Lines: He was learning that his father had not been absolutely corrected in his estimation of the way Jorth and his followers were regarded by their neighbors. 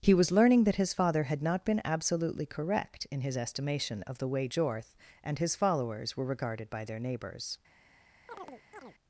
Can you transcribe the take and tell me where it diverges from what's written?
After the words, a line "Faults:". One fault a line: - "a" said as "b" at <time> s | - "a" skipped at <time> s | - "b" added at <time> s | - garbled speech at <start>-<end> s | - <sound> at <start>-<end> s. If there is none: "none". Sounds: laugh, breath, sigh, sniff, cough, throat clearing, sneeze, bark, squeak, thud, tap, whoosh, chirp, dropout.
He was learning that his father had not been absolutely correct in his estimation of the way Jorth and his followers were regarded by their neighbors.
Faults:
- "corrected" said as "correct" at 2.5 s
- chirp at 8.3-8.9 s